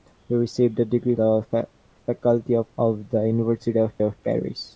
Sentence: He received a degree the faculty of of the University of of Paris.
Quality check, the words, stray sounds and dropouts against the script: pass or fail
pass